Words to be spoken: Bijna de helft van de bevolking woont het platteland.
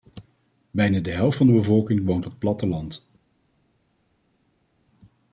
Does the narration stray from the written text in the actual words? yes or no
no